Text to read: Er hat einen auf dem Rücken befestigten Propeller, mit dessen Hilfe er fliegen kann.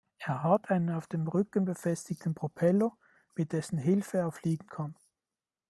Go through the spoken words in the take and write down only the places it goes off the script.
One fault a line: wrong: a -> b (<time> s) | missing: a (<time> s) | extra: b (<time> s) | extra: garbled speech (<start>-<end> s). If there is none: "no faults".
no faults